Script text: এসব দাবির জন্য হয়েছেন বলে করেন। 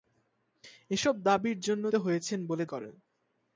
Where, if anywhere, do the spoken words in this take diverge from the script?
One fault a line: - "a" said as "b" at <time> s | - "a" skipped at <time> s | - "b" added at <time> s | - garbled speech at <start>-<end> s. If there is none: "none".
none